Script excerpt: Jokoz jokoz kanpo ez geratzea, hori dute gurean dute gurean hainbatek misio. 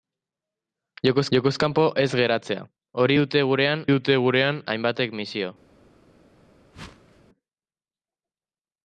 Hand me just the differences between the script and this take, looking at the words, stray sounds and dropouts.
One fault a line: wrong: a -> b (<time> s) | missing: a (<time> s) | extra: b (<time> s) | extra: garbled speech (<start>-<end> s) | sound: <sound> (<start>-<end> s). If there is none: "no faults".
sound: whoosh (6.7-7.2 s)